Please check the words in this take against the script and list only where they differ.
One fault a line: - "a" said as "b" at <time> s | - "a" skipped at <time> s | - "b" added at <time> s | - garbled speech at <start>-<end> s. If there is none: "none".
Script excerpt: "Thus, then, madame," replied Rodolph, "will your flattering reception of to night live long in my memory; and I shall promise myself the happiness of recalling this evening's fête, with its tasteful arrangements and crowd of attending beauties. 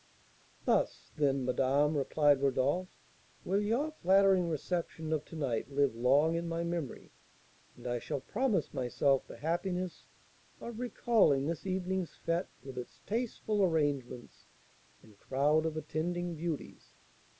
none